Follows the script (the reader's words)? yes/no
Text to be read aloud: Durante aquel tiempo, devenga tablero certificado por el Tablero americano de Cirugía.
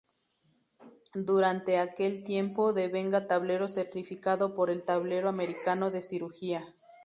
yes